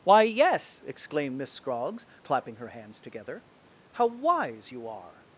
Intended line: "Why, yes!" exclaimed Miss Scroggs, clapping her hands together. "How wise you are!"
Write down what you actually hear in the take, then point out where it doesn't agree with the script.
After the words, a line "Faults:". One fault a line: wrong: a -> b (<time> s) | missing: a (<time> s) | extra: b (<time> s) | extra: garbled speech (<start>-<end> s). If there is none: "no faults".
"Why, yes!" exclaimed Miss Scroggs, clapping her hands together. "How wise you are!"
Faults:
no faults